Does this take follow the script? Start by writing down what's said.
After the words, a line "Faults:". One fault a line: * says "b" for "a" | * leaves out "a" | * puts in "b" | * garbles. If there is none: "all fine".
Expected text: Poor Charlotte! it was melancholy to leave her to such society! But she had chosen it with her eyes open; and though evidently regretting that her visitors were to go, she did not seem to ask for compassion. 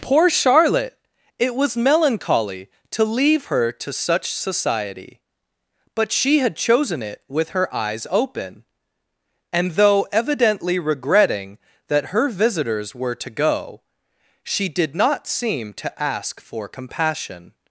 Poor Charlotte! it was melancholy to leave her to such society! But she had chosen it with her eyes open; and though evidently regretting that her visitors were to go, she did not seem to ask for compassion.
Faults:
all fine